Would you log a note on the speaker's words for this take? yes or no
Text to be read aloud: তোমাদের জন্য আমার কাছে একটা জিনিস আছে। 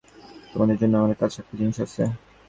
no